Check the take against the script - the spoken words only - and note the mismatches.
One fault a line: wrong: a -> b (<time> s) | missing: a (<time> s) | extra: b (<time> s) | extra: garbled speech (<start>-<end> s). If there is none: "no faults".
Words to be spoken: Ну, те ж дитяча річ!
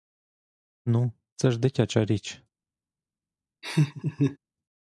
wrong: те -> це (1.4 s)